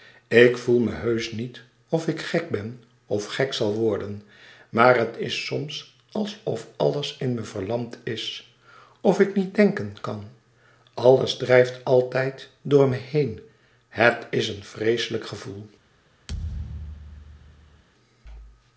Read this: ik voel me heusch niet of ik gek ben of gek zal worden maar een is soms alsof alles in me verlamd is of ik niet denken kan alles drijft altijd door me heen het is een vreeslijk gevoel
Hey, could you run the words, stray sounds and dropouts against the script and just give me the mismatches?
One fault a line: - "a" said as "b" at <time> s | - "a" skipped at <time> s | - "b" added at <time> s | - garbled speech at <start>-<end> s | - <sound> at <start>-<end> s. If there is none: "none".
- "een" said as "het" at 5.0 s
- thud at 16.3-17.8 s